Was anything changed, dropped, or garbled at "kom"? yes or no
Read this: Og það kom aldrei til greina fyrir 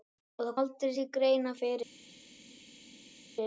yes